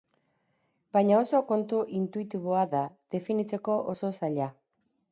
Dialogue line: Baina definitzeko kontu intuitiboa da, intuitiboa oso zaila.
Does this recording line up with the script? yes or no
no